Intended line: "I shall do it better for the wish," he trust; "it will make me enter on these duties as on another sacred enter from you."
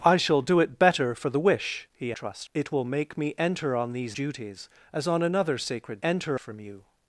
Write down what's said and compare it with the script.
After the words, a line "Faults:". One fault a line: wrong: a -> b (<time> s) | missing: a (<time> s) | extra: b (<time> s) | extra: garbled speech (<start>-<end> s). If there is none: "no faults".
"I shall do it better for the wish," he trust; "it will make me enter on these duties as on another sacred enter from you."
Faults:
no faults